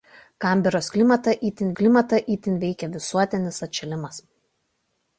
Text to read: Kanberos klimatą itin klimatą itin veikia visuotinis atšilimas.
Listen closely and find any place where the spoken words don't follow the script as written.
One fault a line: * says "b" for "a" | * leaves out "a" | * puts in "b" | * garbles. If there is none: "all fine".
all fine